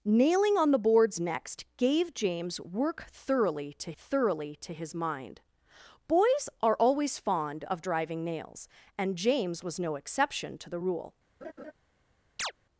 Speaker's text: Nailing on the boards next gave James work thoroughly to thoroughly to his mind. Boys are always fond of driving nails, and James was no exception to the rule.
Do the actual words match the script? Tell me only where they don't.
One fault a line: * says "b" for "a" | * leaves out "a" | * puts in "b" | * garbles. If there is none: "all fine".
all fine